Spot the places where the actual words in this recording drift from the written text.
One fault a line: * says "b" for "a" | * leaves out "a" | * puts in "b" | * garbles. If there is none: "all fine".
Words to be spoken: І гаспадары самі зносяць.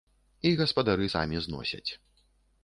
all fine